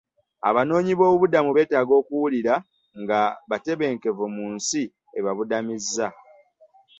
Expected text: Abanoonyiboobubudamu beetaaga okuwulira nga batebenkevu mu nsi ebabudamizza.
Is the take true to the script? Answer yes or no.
yes